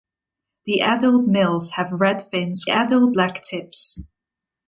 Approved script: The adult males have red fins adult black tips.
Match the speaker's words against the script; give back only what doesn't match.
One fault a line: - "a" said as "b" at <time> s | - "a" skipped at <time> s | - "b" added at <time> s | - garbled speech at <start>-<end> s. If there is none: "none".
none